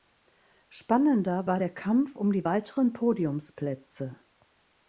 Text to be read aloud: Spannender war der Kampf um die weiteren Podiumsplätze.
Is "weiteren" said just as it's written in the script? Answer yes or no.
yes